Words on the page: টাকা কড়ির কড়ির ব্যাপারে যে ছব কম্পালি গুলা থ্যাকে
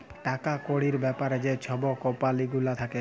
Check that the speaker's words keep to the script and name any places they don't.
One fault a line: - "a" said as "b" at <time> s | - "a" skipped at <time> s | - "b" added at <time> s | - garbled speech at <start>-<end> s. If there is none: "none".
- "কড়ির" skipped at 0.9 s